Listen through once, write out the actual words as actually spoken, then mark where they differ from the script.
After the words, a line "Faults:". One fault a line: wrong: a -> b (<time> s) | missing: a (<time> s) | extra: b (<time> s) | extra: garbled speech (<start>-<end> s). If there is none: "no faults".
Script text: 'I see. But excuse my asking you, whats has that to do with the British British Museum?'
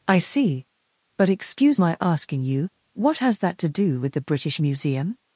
'I see. But excuse my asking you, what has that to do with the British Museum?'
Faults:
wrong: whats -> what (2.9 s)
missing: British (4.6 s)